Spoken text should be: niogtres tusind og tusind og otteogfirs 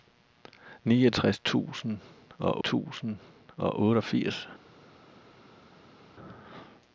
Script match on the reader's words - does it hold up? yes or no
yes